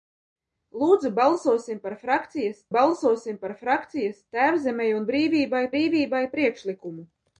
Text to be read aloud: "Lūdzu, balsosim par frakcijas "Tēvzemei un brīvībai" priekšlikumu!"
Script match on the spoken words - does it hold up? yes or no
no